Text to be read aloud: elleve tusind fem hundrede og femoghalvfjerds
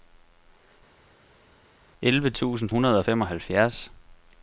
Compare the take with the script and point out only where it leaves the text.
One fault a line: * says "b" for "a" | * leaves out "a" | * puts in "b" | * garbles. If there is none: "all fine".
* leaves out "fem"